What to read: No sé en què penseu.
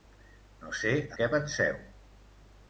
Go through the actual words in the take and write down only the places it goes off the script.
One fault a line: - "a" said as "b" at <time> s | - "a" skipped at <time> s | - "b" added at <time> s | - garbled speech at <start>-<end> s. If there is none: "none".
- "en" skipped at 0.9 s